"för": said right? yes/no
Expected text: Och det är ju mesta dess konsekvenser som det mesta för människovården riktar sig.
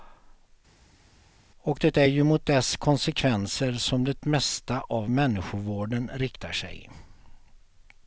no